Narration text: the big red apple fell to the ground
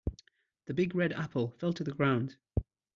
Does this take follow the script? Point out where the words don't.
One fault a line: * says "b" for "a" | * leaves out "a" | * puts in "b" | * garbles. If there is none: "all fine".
all fine